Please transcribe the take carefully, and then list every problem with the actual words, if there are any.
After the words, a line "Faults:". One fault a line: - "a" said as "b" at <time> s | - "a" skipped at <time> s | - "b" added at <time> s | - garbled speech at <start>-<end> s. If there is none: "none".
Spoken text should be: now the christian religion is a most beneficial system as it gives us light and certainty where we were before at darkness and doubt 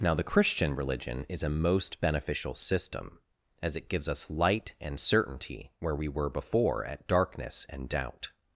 now the christian religion is a most beneficial system as it gives us light and certainty where we were before at darkness and doubt
Faults:
none